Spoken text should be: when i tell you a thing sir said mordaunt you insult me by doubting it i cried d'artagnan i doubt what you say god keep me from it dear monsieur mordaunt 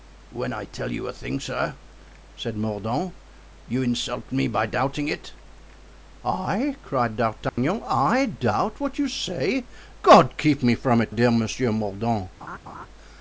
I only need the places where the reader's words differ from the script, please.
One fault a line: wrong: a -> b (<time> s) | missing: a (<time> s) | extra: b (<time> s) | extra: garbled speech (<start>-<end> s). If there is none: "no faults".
no faults